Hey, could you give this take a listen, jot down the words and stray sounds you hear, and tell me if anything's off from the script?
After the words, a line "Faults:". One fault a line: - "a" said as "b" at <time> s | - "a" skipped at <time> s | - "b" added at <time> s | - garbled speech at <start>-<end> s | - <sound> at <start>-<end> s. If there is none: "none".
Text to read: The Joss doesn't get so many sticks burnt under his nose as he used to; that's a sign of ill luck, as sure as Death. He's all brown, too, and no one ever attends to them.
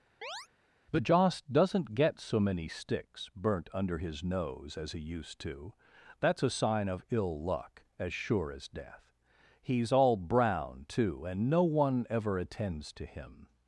The Joss doesn't get so many sticks burnt under his nose as he used to; that's a sign of ill luck, as sure as Death. He's all brown, too, and no one ever attends to him.
Faults:
- chirp at 0.2-0.5 s
- "them" said as "him" at 13.0 s